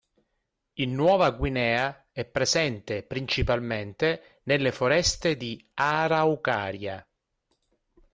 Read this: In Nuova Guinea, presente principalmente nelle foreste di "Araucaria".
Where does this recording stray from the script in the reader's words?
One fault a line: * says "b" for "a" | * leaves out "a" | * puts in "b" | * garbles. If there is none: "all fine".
* puts in "è"